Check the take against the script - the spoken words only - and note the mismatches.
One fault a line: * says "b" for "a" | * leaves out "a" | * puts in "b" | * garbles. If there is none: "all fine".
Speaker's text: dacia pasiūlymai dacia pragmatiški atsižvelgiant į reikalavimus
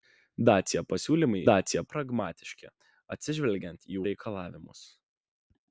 all fine